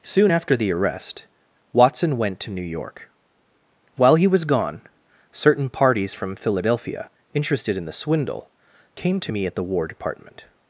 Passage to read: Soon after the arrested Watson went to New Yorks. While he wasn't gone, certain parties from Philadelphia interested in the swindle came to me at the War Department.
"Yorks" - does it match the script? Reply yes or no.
no